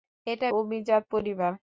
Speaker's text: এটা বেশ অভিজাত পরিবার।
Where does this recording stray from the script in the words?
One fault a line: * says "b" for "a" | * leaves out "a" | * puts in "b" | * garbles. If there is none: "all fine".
* leaves out "বেশ"